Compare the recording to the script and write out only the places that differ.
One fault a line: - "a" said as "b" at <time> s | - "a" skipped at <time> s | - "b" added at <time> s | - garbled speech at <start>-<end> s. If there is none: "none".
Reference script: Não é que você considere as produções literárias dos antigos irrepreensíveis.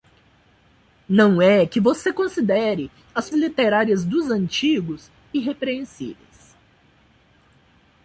- "produções" skipped at 3.3 s